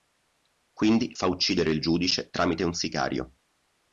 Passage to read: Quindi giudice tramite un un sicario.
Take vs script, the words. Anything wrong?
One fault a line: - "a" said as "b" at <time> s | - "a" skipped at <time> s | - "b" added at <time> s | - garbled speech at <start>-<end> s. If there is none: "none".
- "fa uccidere il" added at 1.1 s
- "un" skipped at 2.7 s